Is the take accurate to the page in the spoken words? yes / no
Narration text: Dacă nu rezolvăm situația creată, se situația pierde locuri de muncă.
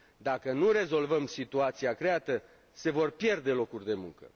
no